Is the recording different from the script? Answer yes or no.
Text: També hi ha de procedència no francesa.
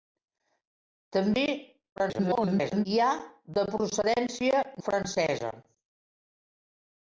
yes